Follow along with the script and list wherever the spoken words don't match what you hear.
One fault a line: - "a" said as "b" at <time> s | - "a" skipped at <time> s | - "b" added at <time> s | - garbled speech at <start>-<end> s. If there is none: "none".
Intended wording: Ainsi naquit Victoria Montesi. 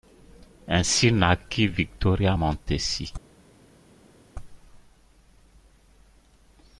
none